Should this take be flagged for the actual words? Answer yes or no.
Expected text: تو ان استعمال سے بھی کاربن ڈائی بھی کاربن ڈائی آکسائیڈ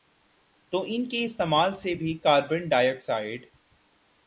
yes